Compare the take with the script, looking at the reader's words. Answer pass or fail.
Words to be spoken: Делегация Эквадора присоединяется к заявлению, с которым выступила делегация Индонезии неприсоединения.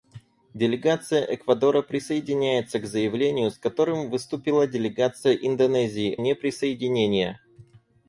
pass